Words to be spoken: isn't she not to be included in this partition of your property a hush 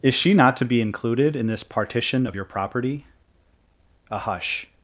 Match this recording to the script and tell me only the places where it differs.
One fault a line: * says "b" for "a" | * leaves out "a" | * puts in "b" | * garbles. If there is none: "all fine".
* says "is" for "isn't"